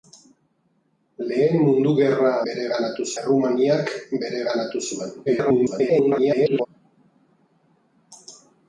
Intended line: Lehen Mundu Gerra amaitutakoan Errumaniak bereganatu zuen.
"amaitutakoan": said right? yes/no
no